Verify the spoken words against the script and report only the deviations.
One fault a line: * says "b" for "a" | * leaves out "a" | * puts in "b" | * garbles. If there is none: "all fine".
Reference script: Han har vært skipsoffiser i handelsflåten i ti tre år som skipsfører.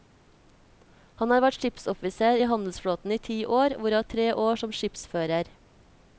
* puts in "år hvorav"